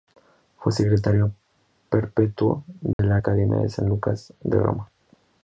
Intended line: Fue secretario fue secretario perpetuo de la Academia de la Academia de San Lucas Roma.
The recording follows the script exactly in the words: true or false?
false